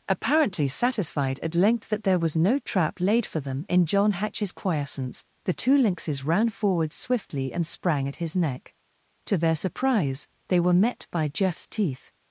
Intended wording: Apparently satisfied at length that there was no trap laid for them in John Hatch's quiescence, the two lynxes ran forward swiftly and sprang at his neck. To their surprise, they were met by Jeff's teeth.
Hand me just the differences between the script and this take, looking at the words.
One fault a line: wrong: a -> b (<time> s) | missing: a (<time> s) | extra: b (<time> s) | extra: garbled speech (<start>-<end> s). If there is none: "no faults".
no faults